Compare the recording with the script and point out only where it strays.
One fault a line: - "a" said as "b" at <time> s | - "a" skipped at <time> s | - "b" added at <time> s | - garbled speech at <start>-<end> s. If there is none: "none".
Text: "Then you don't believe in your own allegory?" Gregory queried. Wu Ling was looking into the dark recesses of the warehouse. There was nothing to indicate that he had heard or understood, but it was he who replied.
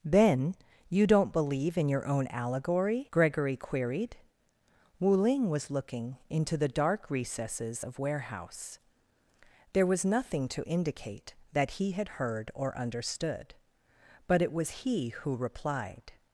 - "the" skipped at 8.0 s